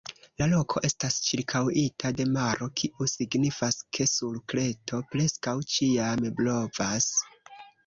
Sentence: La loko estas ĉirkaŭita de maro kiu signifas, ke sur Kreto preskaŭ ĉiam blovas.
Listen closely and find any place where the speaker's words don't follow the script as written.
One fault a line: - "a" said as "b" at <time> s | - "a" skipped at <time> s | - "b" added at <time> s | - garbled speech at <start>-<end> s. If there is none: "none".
none